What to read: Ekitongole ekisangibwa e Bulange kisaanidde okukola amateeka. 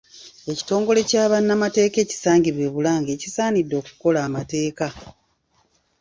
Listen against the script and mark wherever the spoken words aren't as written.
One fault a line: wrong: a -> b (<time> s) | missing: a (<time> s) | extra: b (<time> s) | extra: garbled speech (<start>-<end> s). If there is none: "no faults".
extra: kya bannamateeka (1.1 s)